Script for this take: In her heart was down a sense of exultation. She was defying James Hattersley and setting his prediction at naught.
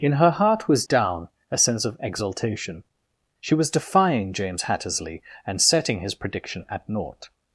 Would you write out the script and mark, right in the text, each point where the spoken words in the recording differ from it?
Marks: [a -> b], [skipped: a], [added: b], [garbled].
In her heart was down a sense of exultation. She was defying James Hattersley and setting his prediction at naught.